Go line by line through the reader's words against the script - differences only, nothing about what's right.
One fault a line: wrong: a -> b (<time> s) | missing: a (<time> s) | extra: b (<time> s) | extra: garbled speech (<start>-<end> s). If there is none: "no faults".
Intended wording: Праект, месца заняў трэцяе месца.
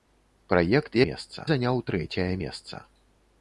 no faults